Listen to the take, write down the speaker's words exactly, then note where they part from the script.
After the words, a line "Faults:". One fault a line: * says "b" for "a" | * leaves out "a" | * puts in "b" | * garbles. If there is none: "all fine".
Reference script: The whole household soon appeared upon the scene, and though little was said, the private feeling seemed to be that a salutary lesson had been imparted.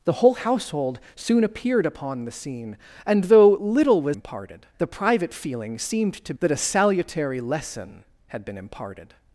The whole household soon appeared upon the scene, and though little was imparted, the private feeling seemed to that a salutary lesson had been imparted.
Faults:
* says "imparted" for "said"
* leaves out "be"